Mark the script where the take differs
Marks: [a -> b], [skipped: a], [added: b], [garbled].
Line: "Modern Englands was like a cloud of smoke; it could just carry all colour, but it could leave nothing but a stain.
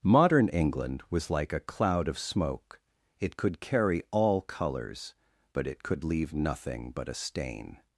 "Modern [Englands -> England] was like a cloud of smoke; it could [skipped: just] carry all [colour, -> colours] but it could leave nothing but a stain.